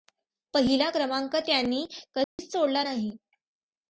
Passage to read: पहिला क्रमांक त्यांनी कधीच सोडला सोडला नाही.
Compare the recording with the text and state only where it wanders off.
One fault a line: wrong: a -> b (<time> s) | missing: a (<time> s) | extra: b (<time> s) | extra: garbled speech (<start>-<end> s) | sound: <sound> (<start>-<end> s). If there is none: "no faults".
sound: dropout (2.2-2.4 s)
missing: सोडला (2.8 s)